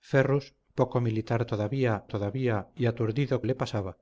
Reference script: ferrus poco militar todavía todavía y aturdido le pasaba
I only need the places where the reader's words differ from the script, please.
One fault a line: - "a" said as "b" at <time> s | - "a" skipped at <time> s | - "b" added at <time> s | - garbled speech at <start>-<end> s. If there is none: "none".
none